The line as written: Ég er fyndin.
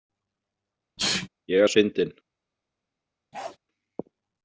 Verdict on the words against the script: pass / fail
pass